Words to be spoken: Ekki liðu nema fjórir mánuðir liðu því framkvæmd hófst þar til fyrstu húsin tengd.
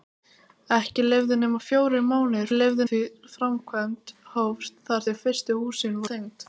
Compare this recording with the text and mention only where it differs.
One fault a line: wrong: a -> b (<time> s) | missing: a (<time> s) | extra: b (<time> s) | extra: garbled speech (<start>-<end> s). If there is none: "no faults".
no faults